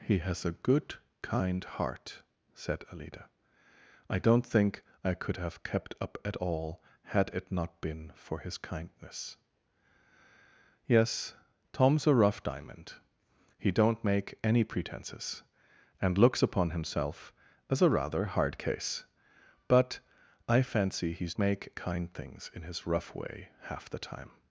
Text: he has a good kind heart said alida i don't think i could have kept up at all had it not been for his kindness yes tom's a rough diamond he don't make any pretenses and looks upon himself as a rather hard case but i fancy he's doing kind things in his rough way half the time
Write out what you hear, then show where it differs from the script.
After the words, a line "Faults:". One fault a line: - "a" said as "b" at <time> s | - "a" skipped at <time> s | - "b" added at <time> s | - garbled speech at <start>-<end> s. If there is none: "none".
he has a good kind heart said alida i don't think i could have kept up at all had it not been for his kindness yes tom's a rough diamond he don't make any pretenses and looks upon himself as a rather hard case but i fancy he's make kind things in his rough way half the time
Faults:
- "doing" said as "make" at 21.4 s